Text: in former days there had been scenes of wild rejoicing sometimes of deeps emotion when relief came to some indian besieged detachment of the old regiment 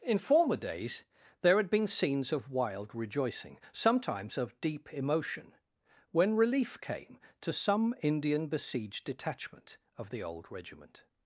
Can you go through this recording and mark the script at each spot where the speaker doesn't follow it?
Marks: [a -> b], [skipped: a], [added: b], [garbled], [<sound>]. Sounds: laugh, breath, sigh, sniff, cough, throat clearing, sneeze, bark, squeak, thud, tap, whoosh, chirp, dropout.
in former days there had been scenes of wild rejoicing sometimes of [deeps -> deep] emotion when relief came to some indian besieged detachment of the old regiment